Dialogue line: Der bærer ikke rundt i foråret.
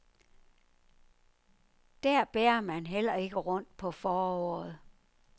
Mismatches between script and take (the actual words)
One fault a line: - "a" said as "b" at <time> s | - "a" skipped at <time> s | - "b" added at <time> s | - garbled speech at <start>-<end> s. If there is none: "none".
- "man heller" added at 2.6 s
- "i" said as "på" at 3.8 s